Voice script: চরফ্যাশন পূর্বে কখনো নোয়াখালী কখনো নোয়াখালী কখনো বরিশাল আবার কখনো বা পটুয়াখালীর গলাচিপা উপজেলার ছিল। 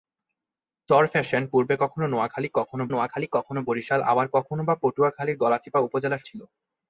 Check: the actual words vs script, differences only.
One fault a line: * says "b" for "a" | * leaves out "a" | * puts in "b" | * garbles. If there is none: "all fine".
all fine